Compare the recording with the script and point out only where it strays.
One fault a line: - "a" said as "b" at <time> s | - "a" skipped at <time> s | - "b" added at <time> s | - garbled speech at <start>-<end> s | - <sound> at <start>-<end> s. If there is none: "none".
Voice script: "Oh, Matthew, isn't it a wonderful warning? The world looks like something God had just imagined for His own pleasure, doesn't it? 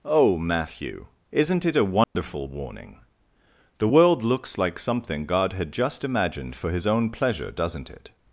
- dropout at 2.0-2.2 s